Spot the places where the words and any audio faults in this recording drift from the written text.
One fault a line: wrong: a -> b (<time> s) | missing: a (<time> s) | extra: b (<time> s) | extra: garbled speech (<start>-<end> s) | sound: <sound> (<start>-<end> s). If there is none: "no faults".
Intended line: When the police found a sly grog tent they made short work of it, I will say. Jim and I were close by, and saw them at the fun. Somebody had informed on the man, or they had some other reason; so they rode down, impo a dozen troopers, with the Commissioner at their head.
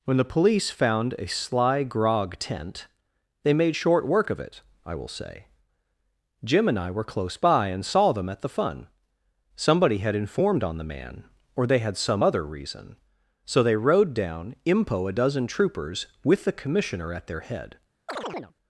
sound: chirp (18.1-18.5 s)